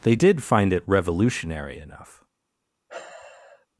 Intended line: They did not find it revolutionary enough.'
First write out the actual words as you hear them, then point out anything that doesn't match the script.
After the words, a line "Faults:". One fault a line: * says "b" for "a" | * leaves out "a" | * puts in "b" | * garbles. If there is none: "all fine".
They did find it revolutionary enough.'
Faults:
* leaves out "not"